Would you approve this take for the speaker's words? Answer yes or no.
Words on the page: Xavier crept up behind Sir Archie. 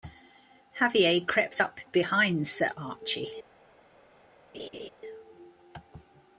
yes